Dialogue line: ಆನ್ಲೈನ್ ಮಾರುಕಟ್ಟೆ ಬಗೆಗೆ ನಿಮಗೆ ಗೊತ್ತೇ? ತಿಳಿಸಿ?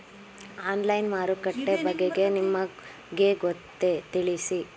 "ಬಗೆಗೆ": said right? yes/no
yes